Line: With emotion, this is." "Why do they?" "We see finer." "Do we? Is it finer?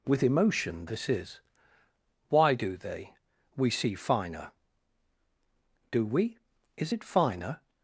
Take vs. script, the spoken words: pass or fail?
pass